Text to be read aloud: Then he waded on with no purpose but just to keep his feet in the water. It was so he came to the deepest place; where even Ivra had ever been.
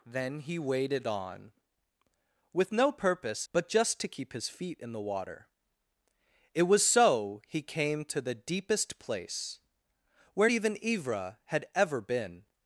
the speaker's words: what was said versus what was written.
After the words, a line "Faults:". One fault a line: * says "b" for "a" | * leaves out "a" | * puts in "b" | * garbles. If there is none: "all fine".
Then he waded on with no purpose but just to keep his feet in the water. It was so he came to the deepest place; where even Ivra had ever been.
Faults:
all fine